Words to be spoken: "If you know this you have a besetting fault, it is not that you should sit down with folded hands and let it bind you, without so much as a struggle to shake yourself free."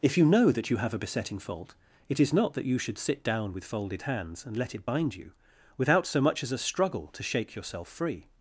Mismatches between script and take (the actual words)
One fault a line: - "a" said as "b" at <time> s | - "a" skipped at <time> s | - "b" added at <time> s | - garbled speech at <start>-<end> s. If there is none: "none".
- "this" said as "that" at 0.5 s